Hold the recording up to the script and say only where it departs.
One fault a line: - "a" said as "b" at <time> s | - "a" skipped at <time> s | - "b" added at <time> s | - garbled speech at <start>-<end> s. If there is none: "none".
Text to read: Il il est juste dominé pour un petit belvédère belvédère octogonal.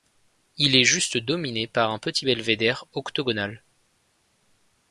- "il" skipped at 0.8 s
- "pour" said as "par" at 1.7 s
- "belvédère" skipped at 2.9 s